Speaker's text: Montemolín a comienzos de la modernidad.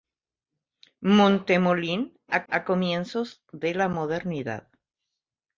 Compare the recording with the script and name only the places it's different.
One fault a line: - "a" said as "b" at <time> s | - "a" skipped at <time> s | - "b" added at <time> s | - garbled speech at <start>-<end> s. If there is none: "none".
- "a" added at 2.5 s